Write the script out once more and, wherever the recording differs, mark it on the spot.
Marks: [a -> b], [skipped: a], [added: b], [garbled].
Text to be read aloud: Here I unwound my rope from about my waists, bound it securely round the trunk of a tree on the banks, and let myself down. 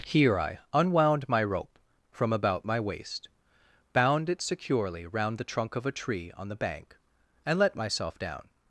Here I unwound my rope from about my [waists, -> waist] bound it securely round the trunk of a tree on the [banks, -> bank] and let myself down.